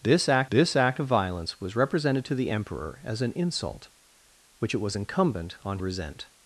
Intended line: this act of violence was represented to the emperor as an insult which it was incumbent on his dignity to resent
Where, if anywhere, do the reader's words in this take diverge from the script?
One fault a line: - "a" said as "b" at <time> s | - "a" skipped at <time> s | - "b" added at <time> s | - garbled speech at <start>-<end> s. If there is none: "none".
- "this act" added at 0.5 s
- "his dignity to" skipped at 5.8 s